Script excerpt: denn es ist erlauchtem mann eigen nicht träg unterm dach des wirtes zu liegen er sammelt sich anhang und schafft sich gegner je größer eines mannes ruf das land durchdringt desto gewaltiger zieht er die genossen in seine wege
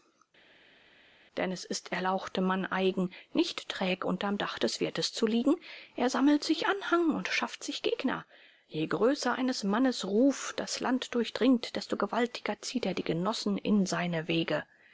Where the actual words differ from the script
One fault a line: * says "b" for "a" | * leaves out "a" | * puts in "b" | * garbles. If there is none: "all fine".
all fine